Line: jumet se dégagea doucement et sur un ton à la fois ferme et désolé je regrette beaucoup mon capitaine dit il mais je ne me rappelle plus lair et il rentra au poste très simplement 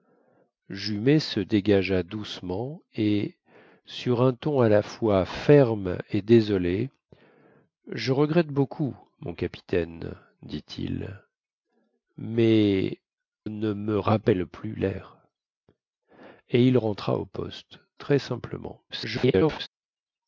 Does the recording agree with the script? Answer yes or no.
no